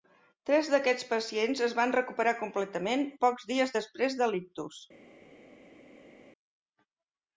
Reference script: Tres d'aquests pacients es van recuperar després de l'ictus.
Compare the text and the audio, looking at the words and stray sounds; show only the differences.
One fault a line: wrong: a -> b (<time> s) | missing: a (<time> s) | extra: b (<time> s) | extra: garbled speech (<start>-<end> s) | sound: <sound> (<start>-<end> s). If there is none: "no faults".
extra: completament pocs dies (2.4 s)